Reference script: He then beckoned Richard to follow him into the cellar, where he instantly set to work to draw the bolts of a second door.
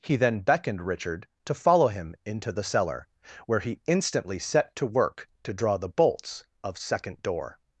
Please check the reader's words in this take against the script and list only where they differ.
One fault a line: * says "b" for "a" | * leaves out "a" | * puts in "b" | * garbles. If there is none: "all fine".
* leaves out "a"